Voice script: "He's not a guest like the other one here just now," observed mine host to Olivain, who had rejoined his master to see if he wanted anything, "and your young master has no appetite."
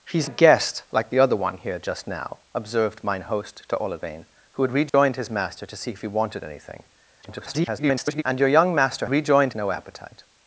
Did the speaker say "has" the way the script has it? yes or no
no